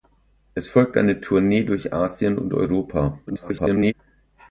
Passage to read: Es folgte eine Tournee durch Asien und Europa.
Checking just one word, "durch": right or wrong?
right